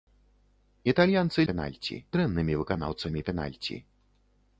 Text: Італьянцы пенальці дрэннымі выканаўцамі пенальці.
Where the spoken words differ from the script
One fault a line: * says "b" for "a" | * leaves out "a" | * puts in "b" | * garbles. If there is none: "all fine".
all fine